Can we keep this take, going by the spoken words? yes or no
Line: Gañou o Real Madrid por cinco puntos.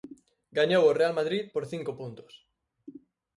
yes